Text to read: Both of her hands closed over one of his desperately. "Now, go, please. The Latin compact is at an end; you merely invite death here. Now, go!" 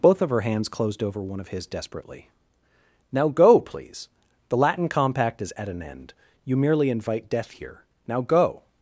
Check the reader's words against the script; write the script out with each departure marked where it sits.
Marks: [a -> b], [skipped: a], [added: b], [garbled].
Both of her hands closed over one of his desperately. "Now, go, please. The Latin compact is at an end; you merely invite death here. Now, go!"